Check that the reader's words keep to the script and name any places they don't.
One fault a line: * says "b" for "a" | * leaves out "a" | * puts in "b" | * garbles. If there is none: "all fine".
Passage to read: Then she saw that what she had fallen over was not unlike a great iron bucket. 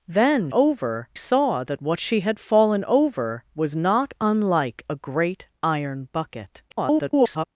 * says "over" for "she"
* garbles